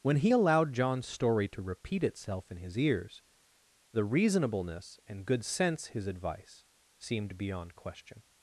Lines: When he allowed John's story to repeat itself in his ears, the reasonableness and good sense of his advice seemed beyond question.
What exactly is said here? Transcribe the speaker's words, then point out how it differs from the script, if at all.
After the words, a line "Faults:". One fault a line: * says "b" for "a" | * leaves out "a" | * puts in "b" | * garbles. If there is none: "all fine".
When he allowed John's story to repeat itself in his ears, the reasonableness and good sense his advice seemed beyond question.
Faults:
* leaves out "of"